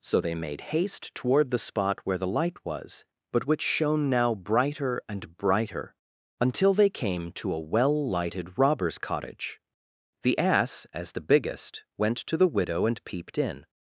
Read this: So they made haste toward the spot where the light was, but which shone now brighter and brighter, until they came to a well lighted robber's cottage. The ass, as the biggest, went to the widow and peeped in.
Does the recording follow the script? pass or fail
pass